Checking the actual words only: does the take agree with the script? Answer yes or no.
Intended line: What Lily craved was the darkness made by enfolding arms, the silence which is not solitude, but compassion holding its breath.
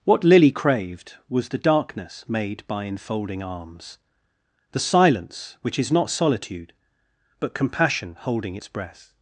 yes